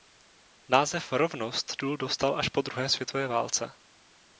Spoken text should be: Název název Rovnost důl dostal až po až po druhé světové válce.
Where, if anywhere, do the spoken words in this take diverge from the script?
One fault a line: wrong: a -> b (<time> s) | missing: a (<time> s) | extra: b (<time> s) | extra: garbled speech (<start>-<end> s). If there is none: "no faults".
missing: název (1.1 s)
missing: až po (2.6 s)